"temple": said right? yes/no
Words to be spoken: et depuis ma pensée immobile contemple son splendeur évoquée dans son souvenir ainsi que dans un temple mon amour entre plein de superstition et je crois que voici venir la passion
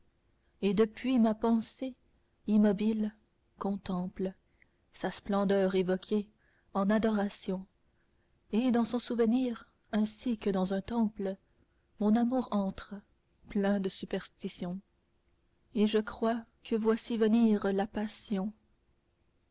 yes